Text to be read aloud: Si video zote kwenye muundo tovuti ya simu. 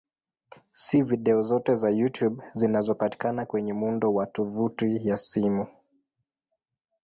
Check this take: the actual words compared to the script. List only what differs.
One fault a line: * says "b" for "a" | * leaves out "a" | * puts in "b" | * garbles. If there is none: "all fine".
* puts in "za YouTube zinazopatikana"
* puts in "wa"